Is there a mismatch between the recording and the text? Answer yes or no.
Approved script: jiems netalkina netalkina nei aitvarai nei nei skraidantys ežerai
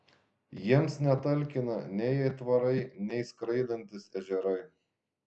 yes